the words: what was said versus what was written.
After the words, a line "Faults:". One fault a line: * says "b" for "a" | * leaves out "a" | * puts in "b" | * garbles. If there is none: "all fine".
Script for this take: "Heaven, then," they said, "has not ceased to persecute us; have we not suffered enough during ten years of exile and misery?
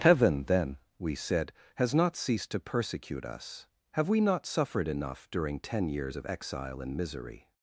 "Heaven, then," we said, "has not ceased to persecute us; have we not suffered enough during ten years of exile and misery?
Faults:
* says "we" for "they"